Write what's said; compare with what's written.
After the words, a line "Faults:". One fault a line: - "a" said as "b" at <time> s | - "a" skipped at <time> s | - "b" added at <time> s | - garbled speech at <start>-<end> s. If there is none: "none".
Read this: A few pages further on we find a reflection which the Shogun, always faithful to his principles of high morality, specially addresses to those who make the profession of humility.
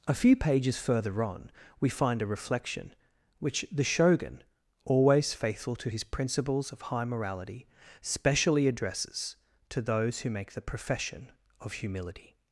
A few pages further on we find a reflection which the Shogun, always faithful to his principles of high morality, specially addresses to those who make the profession of humility.
Faults:
none